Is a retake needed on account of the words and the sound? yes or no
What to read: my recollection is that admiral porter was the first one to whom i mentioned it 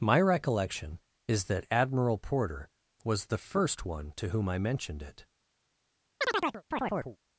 yes